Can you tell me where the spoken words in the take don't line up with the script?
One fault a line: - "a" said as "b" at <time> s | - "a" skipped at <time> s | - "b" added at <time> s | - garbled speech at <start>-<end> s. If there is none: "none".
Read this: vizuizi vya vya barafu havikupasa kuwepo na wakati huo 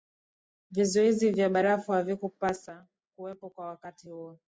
- "vya" skipped at 1.5 s
- "na" said as "kwa" at 3.5 s